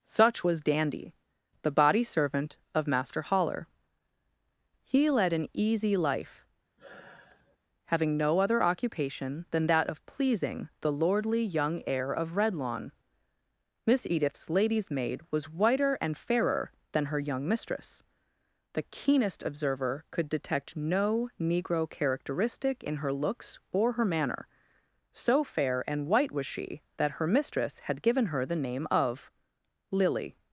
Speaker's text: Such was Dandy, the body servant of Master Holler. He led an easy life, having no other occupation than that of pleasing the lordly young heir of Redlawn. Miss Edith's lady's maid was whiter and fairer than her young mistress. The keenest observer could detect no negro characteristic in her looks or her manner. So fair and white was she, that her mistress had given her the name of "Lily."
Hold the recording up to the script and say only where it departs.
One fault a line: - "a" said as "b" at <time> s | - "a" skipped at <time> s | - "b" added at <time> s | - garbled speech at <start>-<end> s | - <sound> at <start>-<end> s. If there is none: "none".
- sigh at 6.8-7.6 s